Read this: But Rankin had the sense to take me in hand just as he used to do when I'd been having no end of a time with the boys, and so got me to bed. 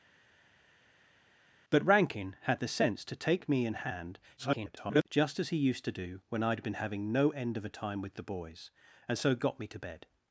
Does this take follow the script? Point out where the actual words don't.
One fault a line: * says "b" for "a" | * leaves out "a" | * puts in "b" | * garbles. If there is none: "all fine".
* garbles